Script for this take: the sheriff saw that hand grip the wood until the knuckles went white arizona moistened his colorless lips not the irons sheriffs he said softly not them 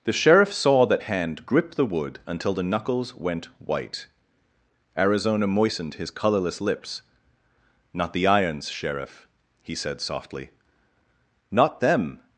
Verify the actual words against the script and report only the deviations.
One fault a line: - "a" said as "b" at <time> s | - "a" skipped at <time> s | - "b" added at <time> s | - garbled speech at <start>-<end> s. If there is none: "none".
- "sheriffs" said as "sheriff" at 8.7 s